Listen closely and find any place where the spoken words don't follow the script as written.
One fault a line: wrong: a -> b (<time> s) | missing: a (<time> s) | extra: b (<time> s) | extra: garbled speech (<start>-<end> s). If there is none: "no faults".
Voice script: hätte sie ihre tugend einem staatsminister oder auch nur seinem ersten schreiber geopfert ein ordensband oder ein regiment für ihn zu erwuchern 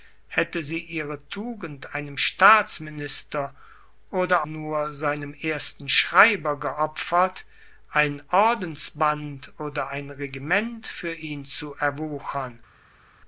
missing: auch (4.5 s)